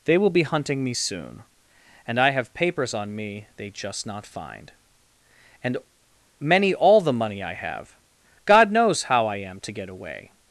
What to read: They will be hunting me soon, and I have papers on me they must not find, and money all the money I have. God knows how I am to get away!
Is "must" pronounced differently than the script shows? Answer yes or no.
yes